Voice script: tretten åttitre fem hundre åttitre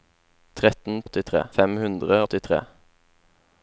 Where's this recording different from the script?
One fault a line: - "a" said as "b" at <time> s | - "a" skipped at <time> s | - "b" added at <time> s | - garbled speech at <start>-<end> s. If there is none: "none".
none